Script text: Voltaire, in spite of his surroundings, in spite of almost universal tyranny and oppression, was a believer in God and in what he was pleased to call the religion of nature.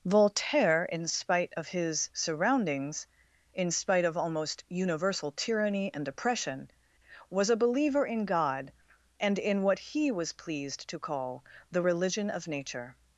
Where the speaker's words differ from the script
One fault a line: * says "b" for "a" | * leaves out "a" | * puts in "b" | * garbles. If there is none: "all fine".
all fine